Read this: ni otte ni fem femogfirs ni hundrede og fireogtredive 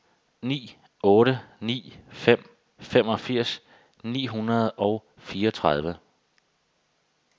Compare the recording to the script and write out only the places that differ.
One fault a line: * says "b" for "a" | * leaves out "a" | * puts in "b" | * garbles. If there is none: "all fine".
all fine